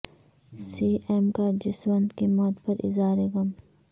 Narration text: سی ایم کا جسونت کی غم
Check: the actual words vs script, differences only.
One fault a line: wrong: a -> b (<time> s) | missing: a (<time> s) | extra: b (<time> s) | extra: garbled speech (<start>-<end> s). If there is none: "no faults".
extra: موت پر اظہار (2.3 s)